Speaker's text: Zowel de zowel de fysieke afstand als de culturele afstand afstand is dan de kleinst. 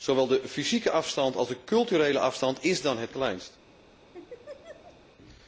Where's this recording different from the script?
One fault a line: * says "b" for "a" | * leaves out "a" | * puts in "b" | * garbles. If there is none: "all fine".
* leaves out "zowel de"
* leaves out "afstand"
* says "het" for "de"